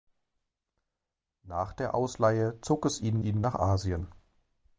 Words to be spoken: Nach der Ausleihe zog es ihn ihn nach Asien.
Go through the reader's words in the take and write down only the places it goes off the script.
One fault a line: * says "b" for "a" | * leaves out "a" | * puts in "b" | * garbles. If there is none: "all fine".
all fine